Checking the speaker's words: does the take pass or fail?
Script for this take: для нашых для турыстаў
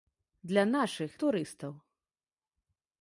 fail